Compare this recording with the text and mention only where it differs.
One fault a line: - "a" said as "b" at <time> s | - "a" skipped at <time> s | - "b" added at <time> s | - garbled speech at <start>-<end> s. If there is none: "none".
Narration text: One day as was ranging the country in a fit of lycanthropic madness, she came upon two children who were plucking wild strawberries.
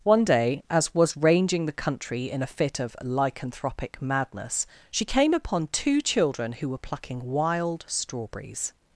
none